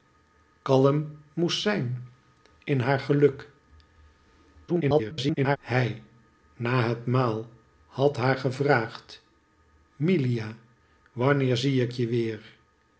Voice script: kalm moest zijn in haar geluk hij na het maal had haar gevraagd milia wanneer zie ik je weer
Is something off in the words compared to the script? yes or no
yes